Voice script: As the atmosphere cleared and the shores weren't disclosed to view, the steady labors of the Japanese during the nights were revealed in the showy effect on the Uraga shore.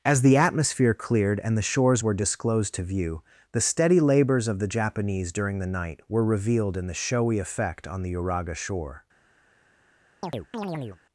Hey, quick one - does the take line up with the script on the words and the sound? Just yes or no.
no